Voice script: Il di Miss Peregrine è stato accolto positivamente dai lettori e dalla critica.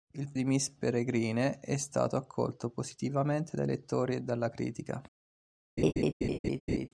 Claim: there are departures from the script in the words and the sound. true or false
true